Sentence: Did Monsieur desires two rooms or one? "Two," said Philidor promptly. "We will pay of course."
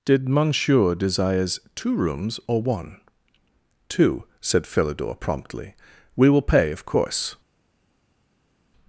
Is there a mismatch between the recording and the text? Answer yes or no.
no